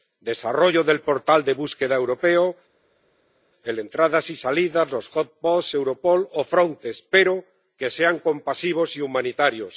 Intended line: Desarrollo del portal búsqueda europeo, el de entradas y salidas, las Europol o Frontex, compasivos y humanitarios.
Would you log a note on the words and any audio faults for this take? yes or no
yes